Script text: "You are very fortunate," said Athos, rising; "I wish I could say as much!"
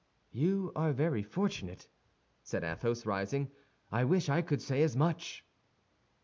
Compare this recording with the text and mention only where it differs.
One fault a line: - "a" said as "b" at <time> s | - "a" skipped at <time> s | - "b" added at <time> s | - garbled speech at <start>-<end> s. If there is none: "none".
none